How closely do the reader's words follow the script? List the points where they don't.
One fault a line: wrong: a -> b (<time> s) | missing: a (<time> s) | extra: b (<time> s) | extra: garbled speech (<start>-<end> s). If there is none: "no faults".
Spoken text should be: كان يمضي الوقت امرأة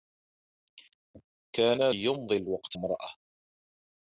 no faults